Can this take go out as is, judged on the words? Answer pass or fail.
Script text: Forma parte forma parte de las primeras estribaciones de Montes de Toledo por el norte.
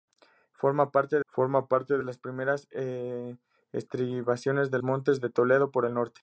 pass